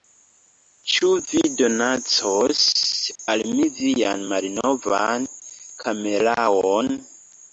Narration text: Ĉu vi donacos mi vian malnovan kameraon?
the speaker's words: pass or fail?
fail